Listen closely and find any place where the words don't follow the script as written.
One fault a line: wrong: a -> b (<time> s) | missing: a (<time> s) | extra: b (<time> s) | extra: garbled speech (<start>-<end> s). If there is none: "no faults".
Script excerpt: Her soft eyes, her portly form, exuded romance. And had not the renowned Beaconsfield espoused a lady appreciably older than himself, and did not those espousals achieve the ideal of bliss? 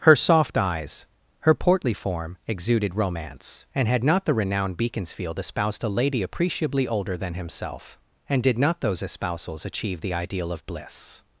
no faults